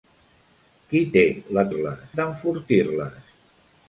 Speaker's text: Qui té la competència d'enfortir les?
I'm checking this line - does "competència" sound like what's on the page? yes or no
no